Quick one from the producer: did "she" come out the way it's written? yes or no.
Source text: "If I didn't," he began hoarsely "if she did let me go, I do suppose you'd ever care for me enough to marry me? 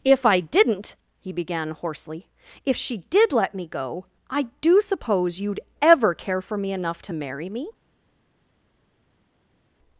yes